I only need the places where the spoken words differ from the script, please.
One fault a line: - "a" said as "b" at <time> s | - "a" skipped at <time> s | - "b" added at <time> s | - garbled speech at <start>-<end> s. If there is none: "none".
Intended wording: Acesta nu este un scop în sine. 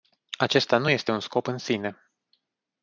none